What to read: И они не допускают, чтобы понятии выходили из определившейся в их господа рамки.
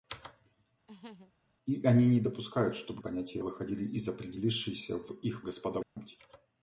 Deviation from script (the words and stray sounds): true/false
true